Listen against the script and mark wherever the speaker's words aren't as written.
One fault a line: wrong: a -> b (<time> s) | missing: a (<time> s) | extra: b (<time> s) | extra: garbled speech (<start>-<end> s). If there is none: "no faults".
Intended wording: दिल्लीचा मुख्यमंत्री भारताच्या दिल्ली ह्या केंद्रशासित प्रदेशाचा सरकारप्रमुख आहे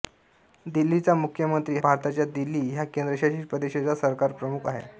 no faults